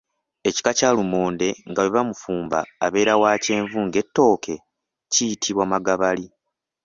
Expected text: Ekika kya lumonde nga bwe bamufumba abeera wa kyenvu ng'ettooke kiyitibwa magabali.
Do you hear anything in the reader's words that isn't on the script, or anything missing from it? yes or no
no